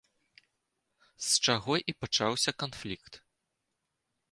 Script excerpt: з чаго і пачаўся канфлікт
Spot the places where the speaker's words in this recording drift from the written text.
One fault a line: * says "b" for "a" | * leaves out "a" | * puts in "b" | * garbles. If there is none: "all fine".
all fine